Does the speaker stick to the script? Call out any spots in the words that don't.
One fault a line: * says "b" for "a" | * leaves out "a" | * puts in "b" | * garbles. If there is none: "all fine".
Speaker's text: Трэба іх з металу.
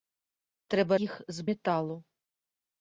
all fine